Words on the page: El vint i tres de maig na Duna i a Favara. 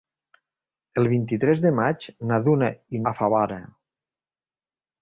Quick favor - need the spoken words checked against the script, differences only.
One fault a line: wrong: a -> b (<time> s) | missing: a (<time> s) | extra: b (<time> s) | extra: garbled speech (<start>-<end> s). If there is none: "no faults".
no faults